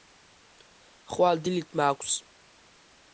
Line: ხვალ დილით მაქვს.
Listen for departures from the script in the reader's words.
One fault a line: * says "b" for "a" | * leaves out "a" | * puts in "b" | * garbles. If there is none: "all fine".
all fine